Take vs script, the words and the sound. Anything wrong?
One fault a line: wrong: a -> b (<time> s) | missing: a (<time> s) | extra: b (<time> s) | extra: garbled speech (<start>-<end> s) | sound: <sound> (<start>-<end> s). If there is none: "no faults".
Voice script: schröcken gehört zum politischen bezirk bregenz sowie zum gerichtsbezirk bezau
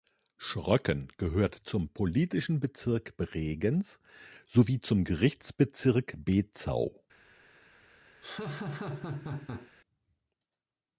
sound: laugh (8.2-9.7 s)